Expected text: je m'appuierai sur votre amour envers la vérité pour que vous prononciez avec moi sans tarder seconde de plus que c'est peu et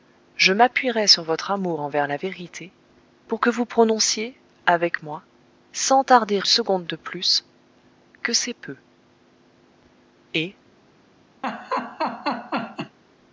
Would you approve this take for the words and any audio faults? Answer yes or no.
no